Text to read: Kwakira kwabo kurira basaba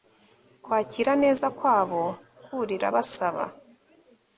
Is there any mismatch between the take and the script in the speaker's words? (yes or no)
yes